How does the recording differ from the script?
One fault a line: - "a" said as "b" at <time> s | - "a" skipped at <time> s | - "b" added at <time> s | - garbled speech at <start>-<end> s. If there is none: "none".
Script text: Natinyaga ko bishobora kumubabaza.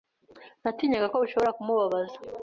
none